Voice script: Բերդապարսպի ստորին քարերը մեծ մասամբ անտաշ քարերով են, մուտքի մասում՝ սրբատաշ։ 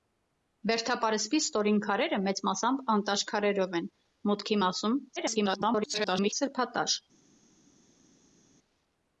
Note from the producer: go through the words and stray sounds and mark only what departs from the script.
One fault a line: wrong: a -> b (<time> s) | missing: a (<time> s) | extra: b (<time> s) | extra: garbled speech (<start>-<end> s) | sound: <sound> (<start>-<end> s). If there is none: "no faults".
extra: garbled speech (5.2-6.3 s)